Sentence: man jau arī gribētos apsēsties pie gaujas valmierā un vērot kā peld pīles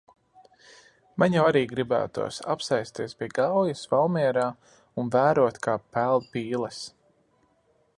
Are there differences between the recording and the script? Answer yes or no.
no